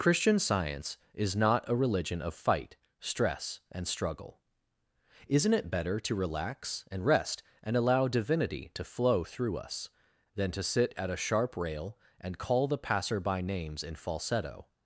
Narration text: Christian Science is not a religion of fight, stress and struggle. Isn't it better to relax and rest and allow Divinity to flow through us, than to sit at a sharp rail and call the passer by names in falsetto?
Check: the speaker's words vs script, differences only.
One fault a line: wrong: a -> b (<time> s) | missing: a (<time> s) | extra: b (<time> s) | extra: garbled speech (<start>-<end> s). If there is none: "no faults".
no faults